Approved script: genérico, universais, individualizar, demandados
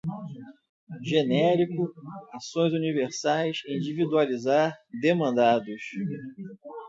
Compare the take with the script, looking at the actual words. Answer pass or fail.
fail